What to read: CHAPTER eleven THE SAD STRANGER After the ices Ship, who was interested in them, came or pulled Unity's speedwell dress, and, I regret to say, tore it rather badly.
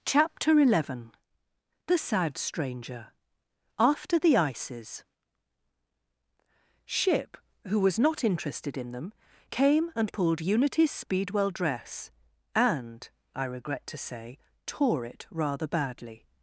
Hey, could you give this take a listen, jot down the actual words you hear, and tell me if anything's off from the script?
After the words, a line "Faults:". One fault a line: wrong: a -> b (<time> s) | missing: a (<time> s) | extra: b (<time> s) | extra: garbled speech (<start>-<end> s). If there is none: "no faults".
CHAPTER eleven THE SAD STRANGER After the ices Ship, who was not interested in them, came and pulled Unity's speedwell dress, and, I regret to say, tore it rather badly.
Faults:
extra: not (8.0 s)
wrong: or -> and (9.9 s)